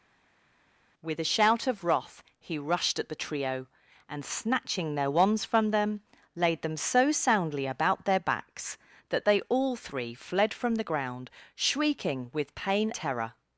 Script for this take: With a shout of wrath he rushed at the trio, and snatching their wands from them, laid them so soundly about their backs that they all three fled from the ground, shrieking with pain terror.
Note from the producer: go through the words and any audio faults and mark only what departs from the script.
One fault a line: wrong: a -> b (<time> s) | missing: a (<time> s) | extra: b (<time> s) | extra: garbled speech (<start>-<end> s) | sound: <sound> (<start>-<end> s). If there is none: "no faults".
no faults